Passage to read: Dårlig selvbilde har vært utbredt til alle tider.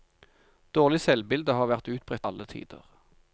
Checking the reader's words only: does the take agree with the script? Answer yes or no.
no